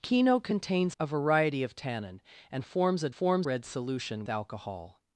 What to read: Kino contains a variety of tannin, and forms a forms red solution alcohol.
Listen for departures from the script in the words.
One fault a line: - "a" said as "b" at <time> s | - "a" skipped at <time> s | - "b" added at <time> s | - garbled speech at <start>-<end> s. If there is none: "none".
none